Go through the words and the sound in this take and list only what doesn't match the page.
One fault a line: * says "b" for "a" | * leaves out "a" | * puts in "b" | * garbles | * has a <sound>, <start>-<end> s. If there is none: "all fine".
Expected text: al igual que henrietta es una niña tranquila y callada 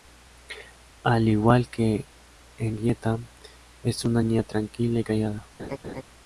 * has a laugh, 5.6-6.0 s